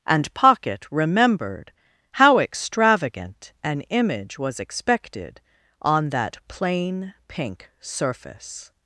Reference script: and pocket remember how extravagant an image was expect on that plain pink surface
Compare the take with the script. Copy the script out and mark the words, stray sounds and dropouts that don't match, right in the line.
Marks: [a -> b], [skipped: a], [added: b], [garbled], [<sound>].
and pocket [remember -> remembered] how extravagant an image was [expect -> expected] on that plain pink surface